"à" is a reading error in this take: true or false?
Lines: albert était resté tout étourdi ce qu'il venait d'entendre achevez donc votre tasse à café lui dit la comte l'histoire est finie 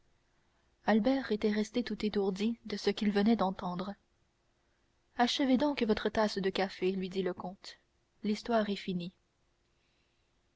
true